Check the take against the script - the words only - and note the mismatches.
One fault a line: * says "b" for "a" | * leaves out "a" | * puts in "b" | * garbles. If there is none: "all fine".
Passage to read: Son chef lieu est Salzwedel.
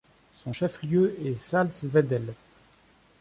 all fine